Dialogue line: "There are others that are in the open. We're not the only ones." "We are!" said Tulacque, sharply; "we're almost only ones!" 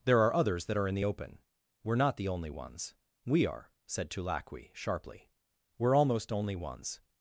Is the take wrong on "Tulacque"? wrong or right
right